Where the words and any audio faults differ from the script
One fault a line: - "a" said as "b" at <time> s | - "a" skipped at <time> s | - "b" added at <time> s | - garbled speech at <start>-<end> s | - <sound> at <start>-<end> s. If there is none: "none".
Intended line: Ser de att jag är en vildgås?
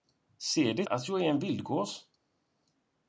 none